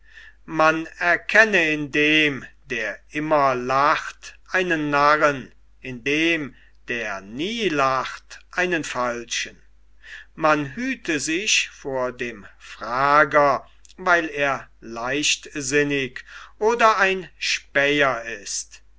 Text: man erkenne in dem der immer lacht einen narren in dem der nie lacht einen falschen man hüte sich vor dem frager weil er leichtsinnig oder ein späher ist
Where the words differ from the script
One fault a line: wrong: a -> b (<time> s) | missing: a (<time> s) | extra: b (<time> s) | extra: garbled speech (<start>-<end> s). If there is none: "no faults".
no faults